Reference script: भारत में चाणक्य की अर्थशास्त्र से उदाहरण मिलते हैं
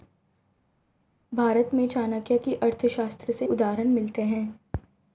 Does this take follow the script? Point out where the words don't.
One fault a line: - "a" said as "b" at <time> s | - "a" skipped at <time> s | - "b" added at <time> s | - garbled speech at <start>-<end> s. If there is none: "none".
none